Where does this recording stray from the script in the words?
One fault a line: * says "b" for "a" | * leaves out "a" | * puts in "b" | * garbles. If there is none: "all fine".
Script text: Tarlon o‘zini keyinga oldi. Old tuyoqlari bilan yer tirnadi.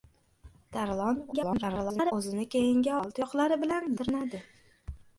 * garbles
* leaves out "oldi"
* leaves out "yer"